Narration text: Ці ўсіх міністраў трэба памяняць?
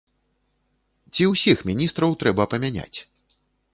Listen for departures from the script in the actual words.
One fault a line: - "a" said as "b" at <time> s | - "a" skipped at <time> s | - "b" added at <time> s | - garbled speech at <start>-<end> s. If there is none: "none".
none